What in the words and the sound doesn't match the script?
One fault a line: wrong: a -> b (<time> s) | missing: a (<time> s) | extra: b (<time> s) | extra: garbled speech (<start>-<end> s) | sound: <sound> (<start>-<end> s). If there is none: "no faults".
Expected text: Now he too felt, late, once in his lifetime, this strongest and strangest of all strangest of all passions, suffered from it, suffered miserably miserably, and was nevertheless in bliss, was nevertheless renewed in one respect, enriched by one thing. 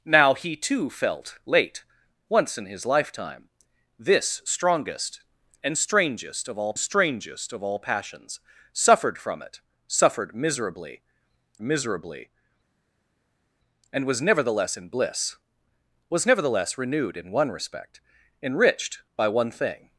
no faults